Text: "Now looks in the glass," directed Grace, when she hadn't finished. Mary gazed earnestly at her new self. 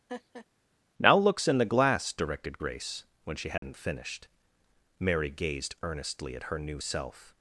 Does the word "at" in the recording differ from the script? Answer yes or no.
no